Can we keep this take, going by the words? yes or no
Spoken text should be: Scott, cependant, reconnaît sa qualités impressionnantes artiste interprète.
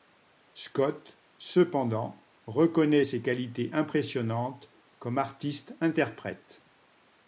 no